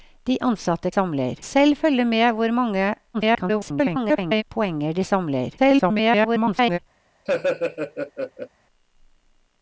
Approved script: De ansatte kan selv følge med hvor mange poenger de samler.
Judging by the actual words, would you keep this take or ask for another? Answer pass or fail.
fail